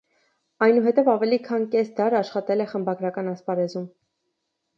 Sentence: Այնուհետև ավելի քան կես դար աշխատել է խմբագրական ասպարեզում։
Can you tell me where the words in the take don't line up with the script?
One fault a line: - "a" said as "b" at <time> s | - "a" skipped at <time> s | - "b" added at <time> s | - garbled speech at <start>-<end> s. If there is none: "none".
none